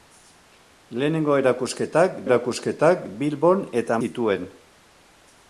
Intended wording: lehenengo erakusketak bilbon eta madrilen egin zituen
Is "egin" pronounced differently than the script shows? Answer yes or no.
yes